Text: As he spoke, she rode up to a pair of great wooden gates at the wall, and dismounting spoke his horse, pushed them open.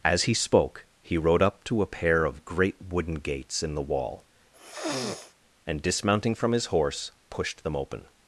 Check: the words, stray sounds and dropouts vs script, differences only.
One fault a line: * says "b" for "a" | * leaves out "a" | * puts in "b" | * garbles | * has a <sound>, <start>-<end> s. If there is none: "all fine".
* says "he" for "she"
* says "in" for "at"
* has a sniff, 4.5-5.3 s
* says "from" for "spoke"